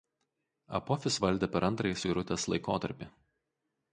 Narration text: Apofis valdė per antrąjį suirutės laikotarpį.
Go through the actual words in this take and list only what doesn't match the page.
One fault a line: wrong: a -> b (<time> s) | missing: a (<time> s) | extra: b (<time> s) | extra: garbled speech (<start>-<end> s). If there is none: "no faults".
no faults